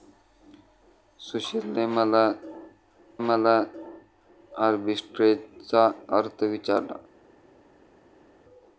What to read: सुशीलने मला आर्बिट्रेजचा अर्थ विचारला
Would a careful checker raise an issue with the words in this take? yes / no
yes